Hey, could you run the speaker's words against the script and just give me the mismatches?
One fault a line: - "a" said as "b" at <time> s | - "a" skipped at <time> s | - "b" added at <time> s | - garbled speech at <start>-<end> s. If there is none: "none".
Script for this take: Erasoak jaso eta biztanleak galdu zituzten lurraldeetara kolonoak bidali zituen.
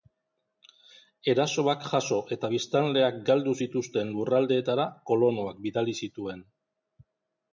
none